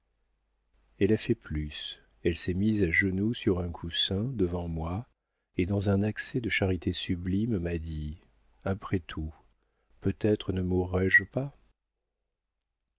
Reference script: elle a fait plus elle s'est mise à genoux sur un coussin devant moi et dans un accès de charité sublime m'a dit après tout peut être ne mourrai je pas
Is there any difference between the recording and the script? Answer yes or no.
no